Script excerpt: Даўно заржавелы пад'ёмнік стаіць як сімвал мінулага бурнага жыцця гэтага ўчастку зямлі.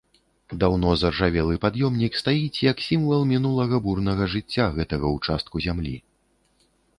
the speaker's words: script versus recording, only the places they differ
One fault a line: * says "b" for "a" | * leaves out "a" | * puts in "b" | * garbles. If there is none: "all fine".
all fine